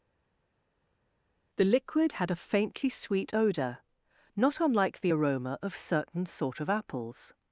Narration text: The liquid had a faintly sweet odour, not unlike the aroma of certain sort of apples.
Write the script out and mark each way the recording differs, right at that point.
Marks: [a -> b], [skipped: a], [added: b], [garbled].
The liquid had a faintly sweet odour, not unlike the aroma of certain sort of apples.